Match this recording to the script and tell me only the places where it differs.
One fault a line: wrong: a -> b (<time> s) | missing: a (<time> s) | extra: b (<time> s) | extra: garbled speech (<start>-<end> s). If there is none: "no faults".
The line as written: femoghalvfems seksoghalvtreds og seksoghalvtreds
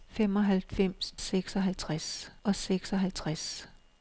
no faults